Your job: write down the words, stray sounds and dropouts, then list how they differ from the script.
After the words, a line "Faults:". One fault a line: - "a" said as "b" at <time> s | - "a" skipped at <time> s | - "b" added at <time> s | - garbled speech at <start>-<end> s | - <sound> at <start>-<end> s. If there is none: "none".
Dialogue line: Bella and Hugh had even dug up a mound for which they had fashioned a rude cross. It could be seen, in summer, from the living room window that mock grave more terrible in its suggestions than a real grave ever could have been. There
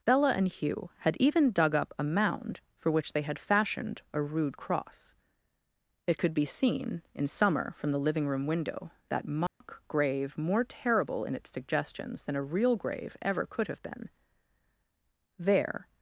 Bella and Hugh had even dug up a mound for which they had fashioned a rude cross. It could be seen, in summer, from the living room window that mock grave more terrible in its suggestions than a real grave ever could have been. There
Faults:
- dropout at 9.5-9.6 s